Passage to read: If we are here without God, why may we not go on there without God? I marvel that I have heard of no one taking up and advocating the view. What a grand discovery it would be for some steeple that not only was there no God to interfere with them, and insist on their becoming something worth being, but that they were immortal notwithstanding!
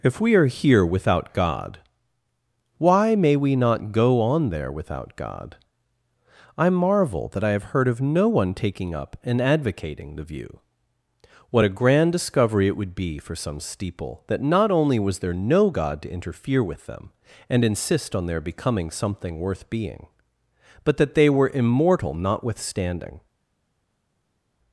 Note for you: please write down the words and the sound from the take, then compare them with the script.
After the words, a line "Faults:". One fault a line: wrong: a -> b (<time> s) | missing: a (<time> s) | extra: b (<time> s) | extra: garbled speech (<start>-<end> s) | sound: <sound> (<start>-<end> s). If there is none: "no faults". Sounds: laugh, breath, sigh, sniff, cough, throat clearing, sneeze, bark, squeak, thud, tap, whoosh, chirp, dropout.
If we are here without God, why may we not go on there without God? I marvel that I have heard of no one taking up and advocating the view. What a grand discovery it would be for some steeple that not only was there no God to interfere with them, and insist on their becoming something worth being, but that they were immortal notwithstanding!
Faults:
no faults